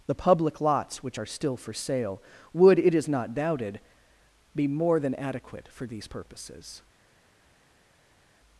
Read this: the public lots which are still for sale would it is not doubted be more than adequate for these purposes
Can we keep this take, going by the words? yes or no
yes